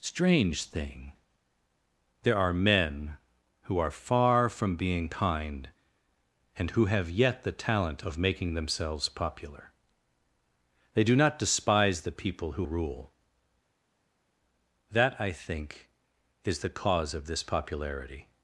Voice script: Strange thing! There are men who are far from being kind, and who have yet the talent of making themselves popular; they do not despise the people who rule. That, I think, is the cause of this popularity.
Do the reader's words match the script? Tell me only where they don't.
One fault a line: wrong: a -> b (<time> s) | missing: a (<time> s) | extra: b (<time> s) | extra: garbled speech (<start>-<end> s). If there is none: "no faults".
no faults